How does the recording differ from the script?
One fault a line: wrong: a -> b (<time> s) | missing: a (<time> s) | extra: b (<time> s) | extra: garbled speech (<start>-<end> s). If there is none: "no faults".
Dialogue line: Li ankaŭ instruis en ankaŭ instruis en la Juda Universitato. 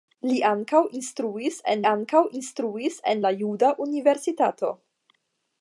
no faults